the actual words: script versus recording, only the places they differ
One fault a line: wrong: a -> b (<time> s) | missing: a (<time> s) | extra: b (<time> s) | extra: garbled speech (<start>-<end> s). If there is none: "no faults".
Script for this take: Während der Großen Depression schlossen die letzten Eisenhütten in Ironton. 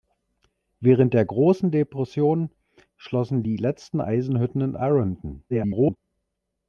extra: garbled speech (5.5-6.0 s)